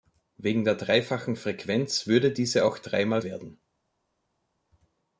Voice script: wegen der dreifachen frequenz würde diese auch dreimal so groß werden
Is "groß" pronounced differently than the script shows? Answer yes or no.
yes